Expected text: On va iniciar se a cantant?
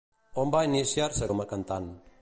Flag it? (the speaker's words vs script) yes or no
yes